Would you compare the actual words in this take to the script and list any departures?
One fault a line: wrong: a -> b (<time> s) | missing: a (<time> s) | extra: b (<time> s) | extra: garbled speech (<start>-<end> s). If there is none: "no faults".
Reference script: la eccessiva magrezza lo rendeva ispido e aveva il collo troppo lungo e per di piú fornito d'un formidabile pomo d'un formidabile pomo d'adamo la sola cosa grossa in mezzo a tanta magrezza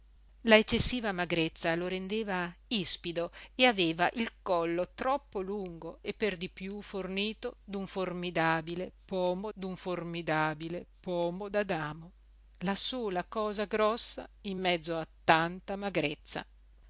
no faults